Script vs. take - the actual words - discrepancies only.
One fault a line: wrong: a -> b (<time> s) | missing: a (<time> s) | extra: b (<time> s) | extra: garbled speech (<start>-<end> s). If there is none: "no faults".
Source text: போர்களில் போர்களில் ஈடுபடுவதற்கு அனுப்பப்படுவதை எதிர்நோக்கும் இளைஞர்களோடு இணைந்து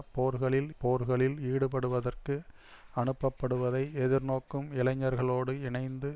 no faults